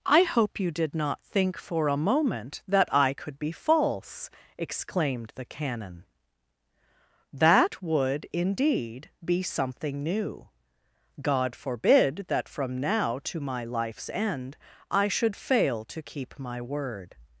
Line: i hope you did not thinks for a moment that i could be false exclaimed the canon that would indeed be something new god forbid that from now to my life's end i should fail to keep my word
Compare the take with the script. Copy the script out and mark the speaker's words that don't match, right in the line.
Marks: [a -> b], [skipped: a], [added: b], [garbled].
i hope you did not [thinks -> think] for a moment that i could be false exclaimed the canon that would indeed be something new god forbid that from now to my life's end i should fail to keep my word